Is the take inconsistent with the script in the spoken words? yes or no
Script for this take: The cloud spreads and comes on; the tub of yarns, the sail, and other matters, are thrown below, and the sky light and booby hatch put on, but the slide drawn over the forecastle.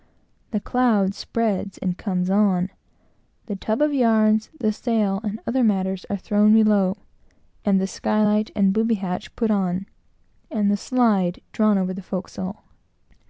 yes